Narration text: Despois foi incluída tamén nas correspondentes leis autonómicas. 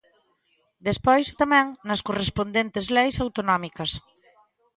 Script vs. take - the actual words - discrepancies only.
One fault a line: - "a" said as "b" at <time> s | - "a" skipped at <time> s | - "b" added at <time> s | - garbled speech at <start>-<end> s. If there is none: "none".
- "foi incluída" skipped at 1.2 s